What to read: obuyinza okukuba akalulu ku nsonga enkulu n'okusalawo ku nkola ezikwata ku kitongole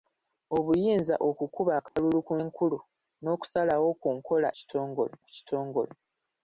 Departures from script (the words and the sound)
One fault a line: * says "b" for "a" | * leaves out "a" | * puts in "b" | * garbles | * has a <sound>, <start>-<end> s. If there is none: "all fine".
* has a dropout, 1.9-2.0 s
* leaves out "nsonga"
* says "kitongole" for "ezikwata"